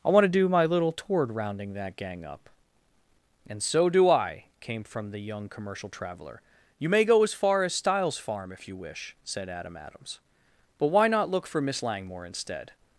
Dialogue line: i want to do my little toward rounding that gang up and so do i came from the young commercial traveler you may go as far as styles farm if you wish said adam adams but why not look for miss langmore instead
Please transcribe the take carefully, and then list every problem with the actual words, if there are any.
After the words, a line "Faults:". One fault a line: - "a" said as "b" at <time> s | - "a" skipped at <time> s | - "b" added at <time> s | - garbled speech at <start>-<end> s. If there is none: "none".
i want to do my little toward rounding that gang up and so do i came from the young commercial traveler you may go as far as styles farm if you wish said adam adams but why not look for miss langmore instead
Faults:
none